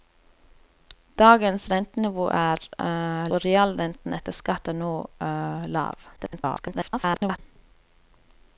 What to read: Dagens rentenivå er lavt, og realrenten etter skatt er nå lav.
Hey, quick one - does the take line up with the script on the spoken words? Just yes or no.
no